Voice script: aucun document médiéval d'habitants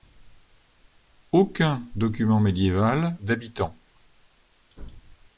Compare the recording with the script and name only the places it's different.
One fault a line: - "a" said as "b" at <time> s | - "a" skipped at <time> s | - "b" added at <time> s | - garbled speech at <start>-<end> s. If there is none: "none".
none